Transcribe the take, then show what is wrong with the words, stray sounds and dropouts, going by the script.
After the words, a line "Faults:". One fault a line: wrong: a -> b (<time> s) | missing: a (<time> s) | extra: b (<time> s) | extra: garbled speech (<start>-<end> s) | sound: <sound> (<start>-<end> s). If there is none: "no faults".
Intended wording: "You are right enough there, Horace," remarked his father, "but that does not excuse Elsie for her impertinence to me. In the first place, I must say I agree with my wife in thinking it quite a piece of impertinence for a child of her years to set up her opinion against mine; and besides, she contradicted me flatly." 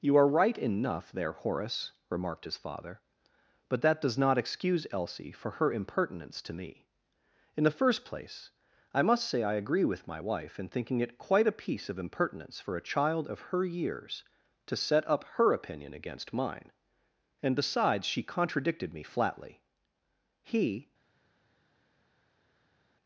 "You are right enough there, Horace," remarked his father, "but that does not excuse Elsie for her impertinence to me. In the first place, I must say I agree with my wife in thinking it quite a piece of impertinence for a child of her years to set up her opinion against mine; and besides, she contradicted me flatly." He
Faults:
extra: He (20.4 s)